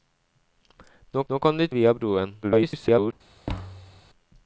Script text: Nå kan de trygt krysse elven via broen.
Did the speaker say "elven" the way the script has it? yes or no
no